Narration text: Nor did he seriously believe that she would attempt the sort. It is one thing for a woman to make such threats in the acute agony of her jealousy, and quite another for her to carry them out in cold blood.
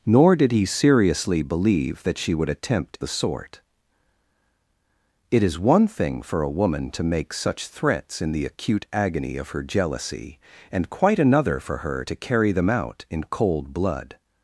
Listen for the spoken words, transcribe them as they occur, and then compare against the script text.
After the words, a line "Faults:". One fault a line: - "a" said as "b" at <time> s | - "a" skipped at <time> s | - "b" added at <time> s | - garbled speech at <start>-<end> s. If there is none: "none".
Nor did he seriously believe that she would attempt the sort. It is one thing for a woman to make such threats in the acute agony of her jealousy, and quite another for her to carry them out in cold blood.
Faults:
none